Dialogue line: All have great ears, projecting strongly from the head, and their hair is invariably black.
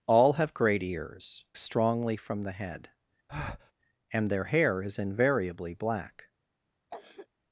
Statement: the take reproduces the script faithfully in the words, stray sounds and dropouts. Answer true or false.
false